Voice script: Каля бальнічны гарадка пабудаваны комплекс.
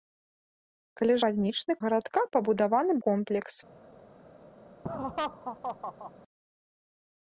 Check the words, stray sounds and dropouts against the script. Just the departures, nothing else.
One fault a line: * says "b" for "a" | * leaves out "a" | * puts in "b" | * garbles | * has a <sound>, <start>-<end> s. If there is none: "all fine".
* has a laugh, 4.8-6.1 s